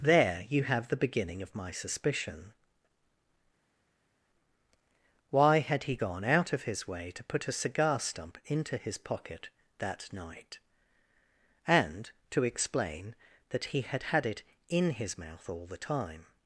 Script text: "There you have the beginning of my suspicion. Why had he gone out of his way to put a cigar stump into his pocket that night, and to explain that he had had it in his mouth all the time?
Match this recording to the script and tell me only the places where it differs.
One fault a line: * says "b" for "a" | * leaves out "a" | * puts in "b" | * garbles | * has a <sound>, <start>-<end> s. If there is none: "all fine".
all fine